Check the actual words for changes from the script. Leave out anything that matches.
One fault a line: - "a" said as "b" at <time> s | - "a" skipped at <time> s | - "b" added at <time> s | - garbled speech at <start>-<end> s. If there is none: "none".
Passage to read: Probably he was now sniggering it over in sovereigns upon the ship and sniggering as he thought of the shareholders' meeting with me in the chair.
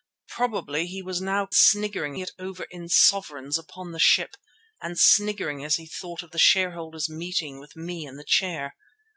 none